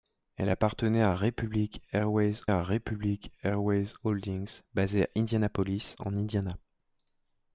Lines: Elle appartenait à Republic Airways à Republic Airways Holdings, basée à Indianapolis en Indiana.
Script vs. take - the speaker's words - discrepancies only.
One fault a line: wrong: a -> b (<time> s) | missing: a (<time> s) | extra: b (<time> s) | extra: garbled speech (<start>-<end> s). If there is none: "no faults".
no faults